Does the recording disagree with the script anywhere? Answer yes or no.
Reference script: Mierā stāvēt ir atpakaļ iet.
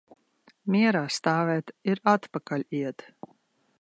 no